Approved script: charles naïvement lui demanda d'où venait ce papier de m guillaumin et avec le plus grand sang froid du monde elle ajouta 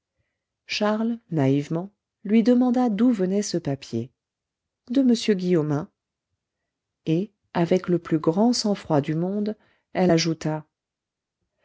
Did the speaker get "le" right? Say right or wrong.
right